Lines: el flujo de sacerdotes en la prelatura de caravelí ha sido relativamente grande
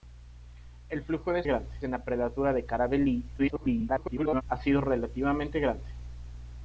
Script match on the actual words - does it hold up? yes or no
no